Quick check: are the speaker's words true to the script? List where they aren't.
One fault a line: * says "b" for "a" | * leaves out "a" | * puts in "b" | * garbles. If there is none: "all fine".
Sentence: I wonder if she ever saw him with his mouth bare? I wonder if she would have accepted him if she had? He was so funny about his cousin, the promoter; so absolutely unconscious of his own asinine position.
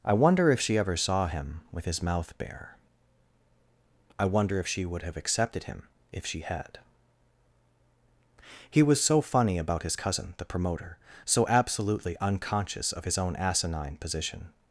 all fine